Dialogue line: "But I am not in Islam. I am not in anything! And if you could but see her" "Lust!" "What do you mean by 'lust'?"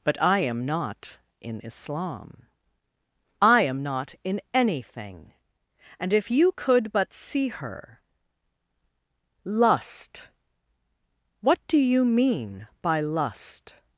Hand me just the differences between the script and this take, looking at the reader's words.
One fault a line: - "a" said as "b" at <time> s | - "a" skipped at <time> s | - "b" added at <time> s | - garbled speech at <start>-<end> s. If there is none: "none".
none